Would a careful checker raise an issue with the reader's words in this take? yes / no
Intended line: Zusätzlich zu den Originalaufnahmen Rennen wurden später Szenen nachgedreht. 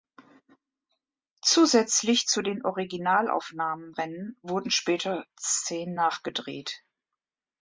no